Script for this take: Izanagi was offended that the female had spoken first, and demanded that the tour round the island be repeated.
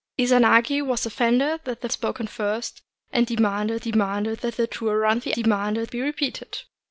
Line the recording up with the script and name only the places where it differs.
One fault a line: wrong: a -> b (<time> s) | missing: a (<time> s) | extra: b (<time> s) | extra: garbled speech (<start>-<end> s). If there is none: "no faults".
missing: female had (1.9 s)
extra: demanded (3.8 s)
wrong: island -> demanded (5.3 s)